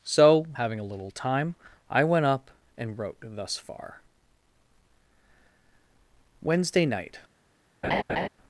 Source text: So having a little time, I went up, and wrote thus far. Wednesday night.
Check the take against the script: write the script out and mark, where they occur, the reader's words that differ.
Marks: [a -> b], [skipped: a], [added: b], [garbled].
So having a little time, I went up, and wrote thus far. Wednesday night.